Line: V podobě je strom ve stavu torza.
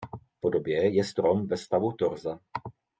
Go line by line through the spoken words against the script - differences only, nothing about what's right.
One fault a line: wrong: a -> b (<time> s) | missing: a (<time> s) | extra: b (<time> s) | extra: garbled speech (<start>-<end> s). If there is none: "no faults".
no faults